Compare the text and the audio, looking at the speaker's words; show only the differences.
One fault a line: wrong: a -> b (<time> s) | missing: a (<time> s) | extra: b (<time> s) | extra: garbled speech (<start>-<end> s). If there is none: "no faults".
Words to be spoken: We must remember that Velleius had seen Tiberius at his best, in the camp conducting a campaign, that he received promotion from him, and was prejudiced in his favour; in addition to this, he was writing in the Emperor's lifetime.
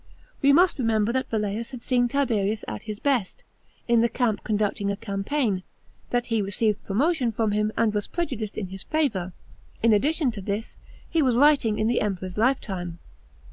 no faults